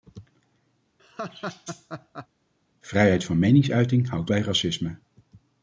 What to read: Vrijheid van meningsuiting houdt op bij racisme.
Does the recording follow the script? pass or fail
fail